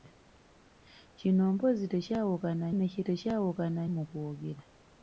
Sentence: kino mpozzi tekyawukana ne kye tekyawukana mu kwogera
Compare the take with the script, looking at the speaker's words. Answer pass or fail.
pass